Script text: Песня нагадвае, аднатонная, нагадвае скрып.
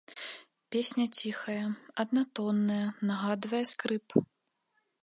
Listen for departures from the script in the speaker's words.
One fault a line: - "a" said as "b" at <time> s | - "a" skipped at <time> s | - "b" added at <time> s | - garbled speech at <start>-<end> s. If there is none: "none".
- "нагадвае" said as "ціхая" at 1.2 s